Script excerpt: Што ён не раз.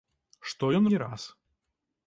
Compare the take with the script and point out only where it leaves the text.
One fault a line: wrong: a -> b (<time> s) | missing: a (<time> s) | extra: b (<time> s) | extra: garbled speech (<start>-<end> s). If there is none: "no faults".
no faults